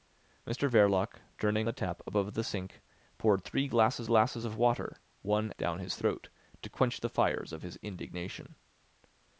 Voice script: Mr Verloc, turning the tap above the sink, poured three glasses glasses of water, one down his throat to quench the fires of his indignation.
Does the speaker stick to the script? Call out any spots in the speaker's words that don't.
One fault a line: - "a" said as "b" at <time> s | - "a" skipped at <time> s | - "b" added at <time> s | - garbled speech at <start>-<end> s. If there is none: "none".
none